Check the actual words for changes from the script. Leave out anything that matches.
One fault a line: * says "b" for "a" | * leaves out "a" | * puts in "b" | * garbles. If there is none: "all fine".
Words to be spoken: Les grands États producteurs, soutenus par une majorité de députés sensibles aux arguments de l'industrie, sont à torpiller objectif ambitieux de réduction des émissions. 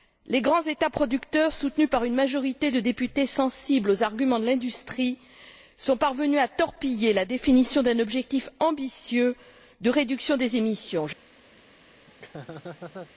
* puts in "parvenus"
* puts in "la définition d'un"